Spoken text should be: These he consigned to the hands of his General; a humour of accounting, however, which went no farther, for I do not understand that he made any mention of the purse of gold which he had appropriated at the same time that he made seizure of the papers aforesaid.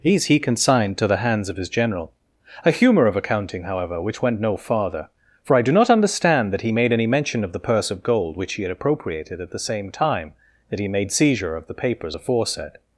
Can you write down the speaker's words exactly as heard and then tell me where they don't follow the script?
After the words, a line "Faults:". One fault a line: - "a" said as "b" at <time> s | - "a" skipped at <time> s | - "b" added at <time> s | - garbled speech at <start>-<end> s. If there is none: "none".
These he consigned to the hands of his General; a humour of accounting, however, which went no farther, for I do not understand that he made any mention of the purse of gold which he had appropriated at the same time that he made seizure of the papers aforesaid.
Faults:
none